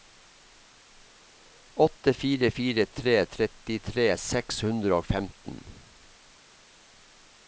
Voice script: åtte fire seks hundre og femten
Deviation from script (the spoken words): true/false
true